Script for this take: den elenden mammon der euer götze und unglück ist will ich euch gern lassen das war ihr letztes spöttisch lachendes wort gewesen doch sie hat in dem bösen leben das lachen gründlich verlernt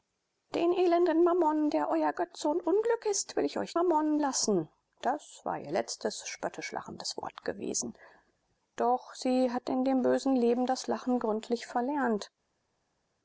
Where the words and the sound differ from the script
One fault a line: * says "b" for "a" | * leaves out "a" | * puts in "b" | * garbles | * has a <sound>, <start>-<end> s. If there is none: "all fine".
* says "mammon" for "gern"